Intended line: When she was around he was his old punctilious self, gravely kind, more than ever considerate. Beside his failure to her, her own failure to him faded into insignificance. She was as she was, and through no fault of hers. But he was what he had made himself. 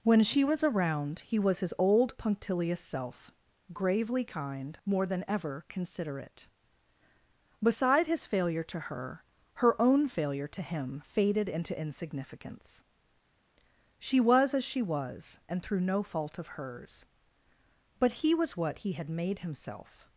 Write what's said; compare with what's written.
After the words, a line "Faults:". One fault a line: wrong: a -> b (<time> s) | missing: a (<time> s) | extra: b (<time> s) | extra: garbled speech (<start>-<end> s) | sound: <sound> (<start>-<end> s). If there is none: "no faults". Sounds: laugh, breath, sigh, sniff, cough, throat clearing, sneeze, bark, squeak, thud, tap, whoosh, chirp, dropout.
When she was around he was his old punctilious self, gravely kind, more than ever considerate. Beside his failure to her, her own failure to him faded into insignificance. She was as she was, and through no fault of hers. But he was what he had made himself.
Faults:
no faults